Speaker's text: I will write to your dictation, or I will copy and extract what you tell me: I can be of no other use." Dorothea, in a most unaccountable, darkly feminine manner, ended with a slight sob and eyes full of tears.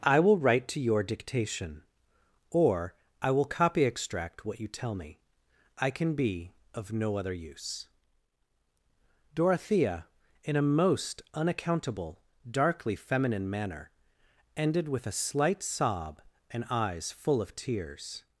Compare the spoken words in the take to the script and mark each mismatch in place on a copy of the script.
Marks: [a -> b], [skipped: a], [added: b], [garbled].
I will write to your dictation, or I will copy [skipped: and] extract what you tell me: I can be of no other use." Dorothea, in a most unaccountable, darkly feminine manner, ended with a slight sob and eyes full of tears.